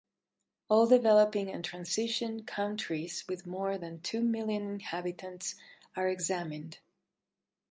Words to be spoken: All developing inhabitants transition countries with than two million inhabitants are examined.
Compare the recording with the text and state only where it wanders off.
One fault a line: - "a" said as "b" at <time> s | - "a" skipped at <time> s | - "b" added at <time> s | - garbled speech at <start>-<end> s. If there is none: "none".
- "inhabitants" said as "and" at 1.5 s
- "more" added at 3.4 s